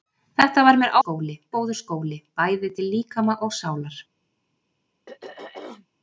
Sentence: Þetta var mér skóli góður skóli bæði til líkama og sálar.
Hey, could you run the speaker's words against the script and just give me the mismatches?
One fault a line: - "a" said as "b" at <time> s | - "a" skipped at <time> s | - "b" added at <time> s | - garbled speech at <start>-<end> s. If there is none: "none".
none